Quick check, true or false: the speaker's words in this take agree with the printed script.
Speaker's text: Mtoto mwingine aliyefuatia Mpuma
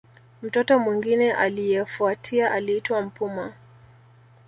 false